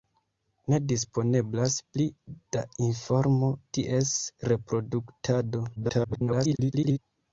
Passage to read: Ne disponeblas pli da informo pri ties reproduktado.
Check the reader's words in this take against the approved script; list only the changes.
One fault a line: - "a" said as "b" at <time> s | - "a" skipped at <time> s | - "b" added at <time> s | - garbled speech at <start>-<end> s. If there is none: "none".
- "pri" skipped at 3.5 s
- garbled speech at 5.8-7.0 s